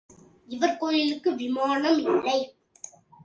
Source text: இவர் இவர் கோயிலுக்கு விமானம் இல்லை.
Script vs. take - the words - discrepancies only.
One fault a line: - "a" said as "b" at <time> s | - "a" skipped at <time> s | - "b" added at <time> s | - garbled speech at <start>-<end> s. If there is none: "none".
- "இவர்" skipped at 0.8 s